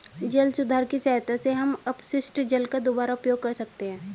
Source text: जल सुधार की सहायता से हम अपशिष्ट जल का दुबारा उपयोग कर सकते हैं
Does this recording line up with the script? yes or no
yes